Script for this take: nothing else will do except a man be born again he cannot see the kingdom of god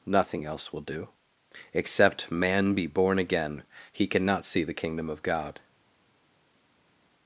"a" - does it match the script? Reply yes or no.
no